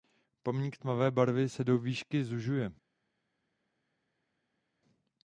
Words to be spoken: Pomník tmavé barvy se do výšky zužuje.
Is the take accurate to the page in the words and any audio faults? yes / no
yes